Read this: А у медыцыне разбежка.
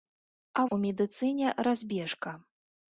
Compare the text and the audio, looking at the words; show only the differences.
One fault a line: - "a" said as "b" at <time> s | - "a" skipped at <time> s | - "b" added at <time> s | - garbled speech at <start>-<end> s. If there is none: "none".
none